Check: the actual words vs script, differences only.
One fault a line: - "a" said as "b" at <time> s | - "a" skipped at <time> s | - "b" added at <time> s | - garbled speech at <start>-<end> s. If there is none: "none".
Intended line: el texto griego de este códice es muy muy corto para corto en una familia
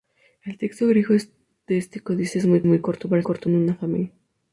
none